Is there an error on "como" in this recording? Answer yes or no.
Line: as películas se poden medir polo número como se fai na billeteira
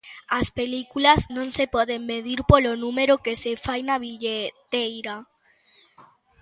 yes